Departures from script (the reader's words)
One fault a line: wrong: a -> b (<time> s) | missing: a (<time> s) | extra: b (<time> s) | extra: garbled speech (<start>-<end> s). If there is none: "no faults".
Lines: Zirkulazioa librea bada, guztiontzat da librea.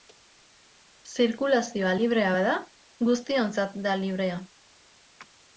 no faults